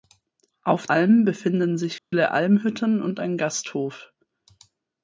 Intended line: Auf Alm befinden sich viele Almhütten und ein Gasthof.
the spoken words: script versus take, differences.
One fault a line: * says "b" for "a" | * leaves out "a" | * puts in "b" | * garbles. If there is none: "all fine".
all fine